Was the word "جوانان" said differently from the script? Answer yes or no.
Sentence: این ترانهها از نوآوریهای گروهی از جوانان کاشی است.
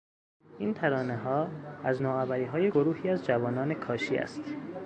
no